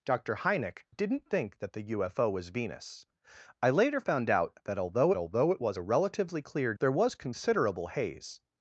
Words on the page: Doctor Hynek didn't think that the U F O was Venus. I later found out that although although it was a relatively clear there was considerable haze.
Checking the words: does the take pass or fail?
pass